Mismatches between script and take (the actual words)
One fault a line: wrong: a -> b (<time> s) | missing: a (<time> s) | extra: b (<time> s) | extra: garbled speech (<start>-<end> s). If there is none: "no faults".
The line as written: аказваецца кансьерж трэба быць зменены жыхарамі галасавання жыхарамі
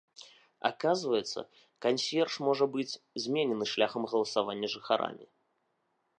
wrong: трэба -> можа (2.5 s)
wrong: жыхарамі -> шляхам (3.8 s)